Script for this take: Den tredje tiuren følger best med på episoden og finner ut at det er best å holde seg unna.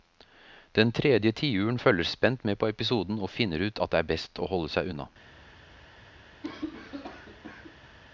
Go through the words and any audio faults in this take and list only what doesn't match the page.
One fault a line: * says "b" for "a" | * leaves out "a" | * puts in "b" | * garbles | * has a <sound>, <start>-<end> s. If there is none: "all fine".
* says "spent" for "best"
* has a cough, 6.4-8.0 s